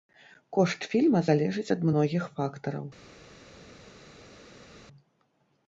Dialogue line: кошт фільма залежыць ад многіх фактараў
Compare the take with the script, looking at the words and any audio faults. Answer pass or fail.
pass